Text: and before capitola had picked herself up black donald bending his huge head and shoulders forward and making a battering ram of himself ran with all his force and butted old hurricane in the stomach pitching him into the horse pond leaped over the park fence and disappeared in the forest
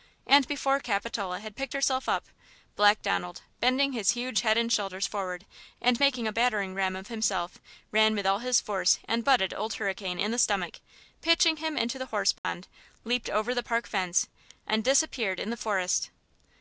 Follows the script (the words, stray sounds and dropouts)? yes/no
no